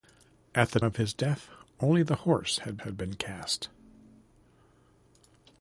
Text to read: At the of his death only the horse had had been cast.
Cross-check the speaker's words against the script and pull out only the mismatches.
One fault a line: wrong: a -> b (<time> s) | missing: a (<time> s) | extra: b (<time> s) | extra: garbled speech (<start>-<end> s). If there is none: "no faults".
no faults